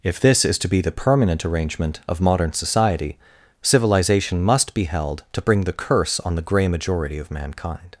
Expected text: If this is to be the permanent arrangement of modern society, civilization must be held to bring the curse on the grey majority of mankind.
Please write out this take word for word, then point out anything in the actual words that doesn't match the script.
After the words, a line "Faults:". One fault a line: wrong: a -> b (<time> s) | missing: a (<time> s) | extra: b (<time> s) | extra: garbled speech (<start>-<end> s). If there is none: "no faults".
If this is to be the permanent arrangement of modern society, civilization must be held to bring the curse on the grey majority of mankind.
Faults:
no faults